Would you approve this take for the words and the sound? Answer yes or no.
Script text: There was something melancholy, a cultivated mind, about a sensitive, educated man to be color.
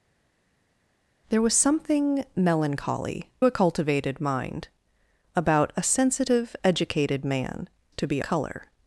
yes